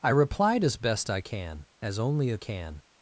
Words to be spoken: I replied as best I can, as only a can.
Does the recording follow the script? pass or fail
pass